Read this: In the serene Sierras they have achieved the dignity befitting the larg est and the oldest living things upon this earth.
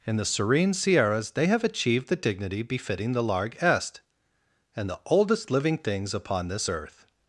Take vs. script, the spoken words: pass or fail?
pass